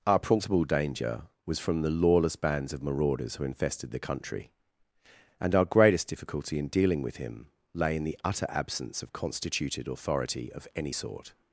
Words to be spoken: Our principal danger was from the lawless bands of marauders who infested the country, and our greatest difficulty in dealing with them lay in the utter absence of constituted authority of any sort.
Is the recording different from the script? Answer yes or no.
yes